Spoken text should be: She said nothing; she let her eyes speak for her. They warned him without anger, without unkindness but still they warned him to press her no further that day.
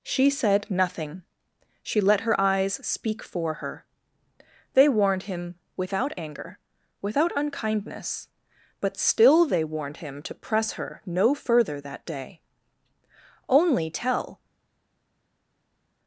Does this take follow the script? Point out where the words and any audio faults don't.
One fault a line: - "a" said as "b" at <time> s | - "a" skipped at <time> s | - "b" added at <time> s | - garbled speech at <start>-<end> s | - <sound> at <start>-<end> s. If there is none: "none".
- "Only tell" added at 13.5 s